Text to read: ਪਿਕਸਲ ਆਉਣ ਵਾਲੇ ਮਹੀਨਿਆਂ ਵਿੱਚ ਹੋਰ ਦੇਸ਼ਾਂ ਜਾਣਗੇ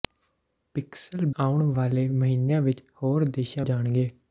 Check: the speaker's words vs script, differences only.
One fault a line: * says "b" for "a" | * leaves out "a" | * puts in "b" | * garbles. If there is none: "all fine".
all fine